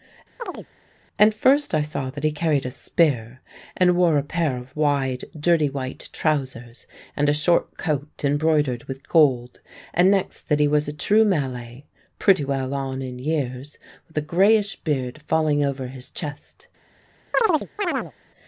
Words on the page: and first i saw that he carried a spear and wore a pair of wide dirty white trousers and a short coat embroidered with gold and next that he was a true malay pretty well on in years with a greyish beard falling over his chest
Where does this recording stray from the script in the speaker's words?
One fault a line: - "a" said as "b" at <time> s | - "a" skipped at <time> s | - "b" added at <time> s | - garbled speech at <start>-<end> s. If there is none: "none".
none